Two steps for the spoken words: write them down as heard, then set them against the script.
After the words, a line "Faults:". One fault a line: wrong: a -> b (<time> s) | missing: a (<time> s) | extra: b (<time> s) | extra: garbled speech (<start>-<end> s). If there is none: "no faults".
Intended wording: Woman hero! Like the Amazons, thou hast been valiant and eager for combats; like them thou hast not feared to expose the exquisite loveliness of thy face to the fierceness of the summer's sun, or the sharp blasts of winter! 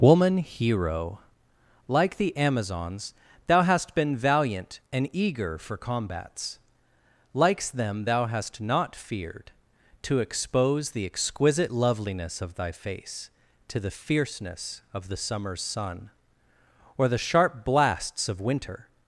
Woman hero! Like the Amazons, thou hast been valiant and eager for combats; likes them thou hast not feared to expose the exquisite loveliness of thy face to the fierceness of the summer's sun, or the sharp blasts of winter!
Faults:
wrong: like -> likes (7.3 s)